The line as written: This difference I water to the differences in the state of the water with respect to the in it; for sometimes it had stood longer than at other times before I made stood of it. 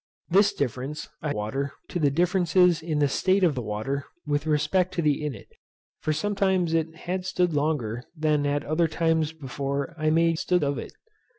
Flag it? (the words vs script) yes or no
no